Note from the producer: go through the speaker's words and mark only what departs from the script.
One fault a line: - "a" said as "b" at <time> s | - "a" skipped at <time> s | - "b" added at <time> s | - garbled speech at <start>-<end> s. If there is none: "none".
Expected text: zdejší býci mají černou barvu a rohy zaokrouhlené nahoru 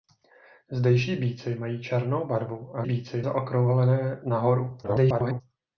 - "rohy" said as "býci" at 2.8 s
- garbled speech at 4.8-5.4 s